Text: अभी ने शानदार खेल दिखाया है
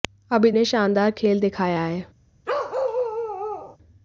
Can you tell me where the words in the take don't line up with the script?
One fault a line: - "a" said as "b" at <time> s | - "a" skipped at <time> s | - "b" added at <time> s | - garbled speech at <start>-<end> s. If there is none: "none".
none